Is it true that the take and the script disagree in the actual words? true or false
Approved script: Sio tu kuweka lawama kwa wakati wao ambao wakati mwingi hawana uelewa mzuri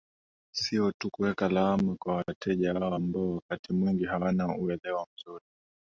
true